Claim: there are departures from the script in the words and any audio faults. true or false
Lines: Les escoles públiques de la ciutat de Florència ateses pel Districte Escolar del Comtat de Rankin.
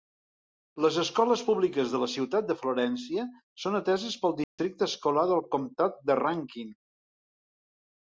true